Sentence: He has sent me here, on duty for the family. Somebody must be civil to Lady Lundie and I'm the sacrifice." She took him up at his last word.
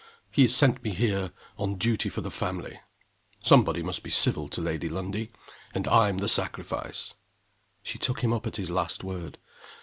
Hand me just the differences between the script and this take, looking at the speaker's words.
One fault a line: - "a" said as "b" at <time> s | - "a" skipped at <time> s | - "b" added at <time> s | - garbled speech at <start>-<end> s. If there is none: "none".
none